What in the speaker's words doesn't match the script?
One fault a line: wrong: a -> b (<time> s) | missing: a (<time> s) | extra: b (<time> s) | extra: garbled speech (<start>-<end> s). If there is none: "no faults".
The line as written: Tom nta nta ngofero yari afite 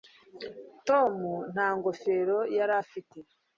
missing: nta (1.7 s)